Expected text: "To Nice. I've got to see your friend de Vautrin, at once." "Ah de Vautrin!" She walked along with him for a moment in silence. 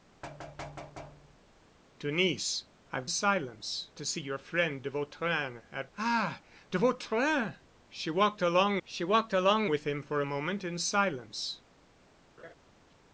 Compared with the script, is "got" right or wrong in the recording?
wrong